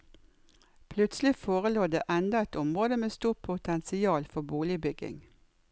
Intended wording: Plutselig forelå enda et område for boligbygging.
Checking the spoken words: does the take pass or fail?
fail